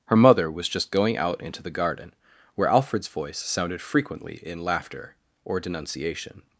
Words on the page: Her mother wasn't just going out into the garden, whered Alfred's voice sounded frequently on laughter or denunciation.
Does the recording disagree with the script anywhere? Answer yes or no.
yes